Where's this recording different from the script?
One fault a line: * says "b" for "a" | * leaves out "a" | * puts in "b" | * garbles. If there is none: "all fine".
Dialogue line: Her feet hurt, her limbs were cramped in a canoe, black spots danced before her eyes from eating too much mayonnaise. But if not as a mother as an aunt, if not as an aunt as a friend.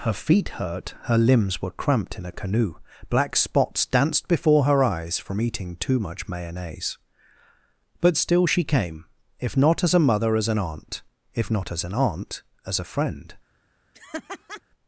* puts in "still she came"